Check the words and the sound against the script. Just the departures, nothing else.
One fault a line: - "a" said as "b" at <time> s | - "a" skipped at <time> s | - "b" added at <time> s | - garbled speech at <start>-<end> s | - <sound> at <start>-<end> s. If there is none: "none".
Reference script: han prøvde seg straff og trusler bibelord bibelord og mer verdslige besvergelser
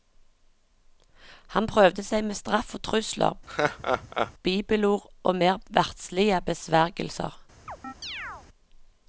- "med" added at 2.3 s
- laugh at 3.5-4.3 s
- "bibelord" skipped at 5.1 s
- chirp at 7.7-8.5 s